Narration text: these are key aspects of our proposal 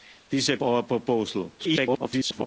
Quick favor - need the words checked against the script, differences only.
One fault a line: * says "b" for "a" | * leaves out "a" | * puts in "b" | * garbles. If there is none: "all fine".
* leaves out "key aspects of"
* garbles